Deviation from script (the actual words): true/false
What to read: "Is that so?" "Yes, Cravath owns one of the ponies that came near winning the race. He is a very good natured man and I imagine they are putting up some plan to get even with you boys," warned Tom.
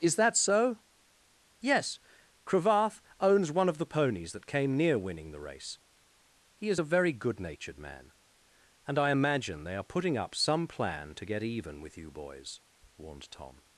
false